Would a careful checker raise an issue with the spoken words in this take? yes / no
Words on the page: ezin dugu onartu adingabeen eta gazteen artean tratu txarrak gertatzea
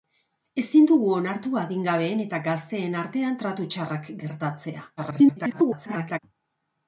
yes